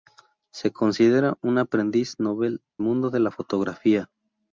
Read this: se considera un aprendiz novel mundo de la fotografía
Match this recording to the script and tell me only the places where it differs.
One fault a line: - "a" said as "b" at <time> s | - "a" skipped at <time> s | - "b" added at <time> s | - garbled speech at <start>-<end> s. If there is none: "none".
none